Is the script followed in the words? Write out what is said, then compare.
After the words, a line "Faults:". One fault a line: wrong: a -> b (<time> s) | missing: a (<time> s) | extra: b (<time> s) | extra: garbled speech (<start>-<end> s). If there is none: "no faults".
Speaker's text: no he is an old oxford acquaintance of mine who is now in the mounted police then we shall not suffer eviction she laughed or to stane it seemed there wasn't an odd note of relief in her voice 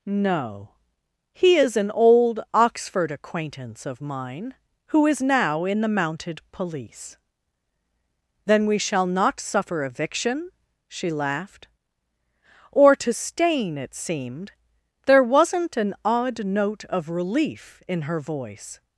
no he is an old oxford acquaintance of mine who is now in the mounted police then we shall not suffer eviction she laughed or to stane it seemed there wasn't an odd note of relief in her voice
Faults:
no faults